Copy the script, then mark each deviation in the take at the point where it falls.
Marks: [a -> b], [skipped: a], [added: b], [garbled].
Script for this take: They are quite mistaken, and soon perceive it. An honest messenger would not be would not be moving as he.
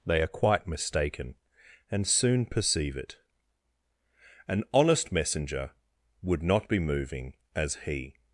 They are quite mistaken, and soon perceive it. An honest messenger would not be [skipped: would not be] moving as he.